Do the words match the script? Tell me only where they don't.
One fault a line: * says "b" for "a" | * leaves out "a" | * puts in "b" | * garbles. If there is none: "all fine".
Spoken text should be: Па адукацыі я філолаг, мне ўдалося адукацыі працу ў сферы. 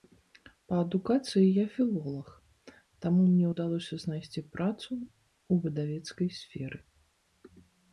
* puts in "таму"
* says "знайсці" for "адукацыі"
* puts in "выдавецкай"